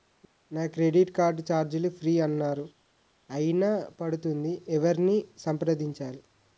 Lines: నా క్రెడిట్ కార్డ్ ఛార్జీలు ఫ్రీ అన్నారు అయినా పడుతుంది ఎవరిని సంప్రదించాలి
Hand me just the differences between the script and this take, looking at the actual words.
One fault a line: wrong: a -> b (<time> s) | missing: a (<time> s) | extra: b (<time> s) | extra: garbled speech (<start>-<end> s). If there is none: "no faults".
no faults